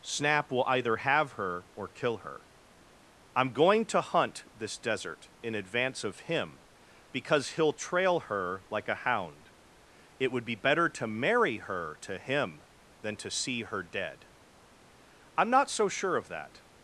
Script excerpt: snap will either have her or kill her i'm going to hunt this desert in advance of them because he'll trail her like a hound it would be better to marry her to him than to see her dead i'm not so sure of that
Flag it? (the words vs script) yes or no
yes